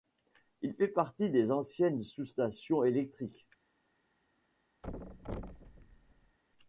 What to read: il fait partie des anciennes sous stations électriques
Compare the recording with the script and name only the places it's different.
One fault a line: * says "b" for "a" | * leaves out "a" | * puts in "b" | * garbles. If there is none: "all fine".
all fine